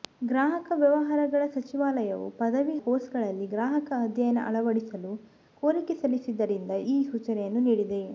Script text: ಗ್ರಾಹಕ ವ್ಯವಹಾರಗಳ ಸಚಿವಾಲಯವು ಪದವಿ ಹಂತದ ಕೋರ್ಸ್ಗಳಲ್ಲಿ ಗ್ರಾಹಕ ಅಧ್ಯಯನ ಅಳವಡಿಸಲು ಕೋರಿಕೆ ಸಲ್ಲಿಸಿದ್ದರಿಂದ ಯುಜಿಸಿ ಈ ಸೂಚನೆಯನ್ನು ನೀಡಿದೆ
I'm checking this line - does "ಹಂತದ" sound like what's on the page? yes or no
no